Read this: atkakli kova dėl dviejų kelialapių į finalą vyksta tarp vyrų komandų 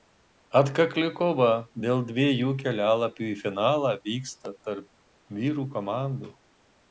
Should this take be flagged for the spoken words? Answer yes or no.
no